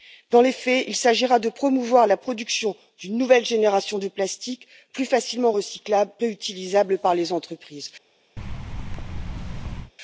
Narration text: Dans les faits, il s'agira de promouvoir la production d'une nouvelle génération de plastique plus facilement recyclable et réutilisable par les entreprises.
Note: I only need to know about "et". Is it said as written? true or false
false